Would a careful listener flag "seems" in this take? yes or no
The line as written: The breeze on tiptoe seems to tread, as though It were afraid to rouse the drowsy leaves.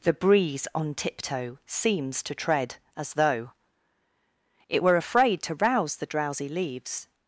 no